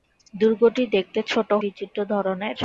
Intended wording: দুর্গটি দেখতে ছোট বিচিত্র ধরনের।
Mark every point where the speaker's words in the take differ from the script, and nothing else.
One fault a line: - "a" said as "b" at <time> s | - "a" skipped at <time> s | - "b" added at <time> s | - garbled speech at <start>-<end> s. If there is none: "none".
none